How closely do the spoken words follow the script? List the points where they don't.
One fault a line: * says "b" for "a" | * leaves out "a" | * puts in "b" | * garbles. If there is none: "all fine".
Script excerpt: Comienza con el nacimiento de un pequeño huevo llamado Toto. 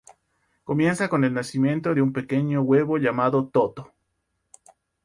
all fine